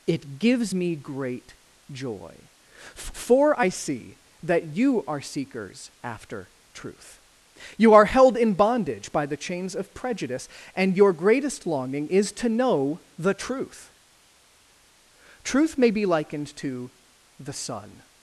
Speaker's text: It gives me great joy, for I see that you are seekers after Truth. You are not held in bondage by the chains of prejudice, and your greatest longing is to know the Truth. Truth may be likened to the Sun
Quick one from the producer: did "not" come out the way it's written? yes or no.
no